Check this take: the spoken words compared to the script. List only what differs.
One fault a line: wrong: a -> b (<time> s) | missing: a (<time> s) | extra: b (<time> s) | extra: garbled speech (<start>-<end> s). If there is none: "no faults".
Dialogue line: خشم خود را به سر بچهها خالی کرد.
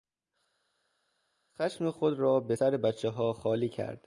no faults